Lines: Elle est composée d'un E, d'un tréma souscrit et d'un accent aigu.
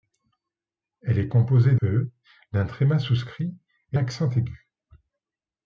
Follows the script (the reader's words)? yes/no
no